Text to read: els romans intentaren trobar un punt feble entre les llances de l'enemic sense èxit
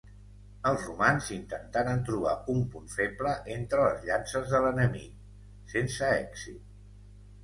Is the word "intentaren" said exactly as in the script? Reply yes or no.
yes